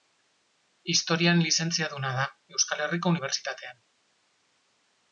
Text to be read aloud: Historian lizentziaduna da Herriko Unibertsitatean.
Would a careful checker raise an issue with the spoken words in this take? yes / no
yes